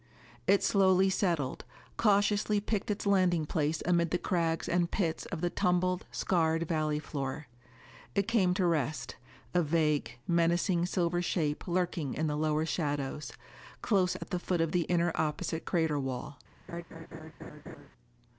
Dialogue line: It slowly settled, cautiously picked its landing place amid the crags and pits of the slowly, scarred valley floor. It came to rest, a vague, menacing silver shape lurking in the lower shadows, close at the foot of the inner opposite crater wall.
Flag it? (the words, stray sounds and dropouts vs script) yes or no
yes